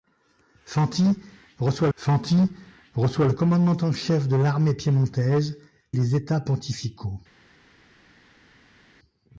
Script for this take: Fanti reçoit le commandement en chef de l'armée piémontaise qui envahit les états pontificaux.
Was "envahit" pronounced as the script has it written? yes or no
no